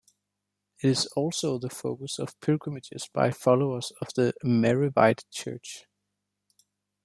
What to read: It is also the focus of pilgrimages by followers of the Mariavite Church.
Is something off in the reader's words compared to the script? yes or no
no